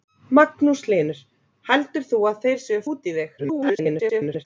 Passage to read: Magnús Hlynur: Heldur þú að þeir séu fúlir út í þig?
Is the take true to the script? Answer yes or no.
no